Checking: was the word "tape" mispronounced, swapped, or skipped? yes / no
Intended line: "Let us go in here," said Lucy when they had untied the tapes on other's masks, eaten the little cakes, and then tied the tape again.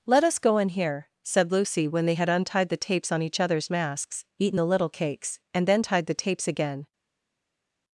yes